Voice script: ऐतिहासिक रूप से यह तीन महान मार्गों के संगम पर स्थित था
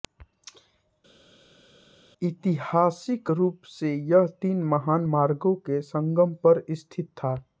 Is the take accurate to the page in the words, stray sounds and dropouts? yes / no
yes